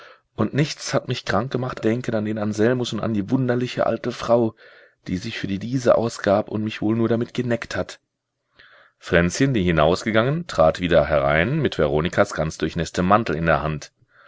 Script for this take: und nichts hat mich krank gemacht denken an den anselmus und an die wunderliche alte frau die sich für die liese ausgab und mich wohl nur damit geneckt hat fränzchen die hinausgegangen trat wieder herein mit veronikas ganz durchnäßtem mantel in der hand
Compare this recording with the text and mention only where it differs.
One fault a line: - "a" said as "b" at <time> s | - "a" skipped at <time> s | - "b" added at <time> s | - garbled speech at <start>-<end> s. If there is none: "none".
none